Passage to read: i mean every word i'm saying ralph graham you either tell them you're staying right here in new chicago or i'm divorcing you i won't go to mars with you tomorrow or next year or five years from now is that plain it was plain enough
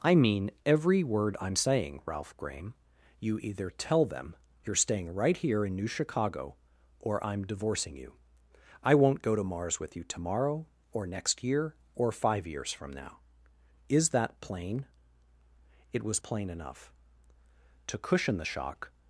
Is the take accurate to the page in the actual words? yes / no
no